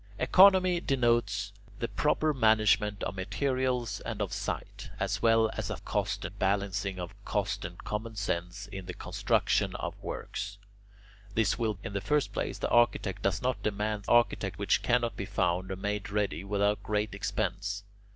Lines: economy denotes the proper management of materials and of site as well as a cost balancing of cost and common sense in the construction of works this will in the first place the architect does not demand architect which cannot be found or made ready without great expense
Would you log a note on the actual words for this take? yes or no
no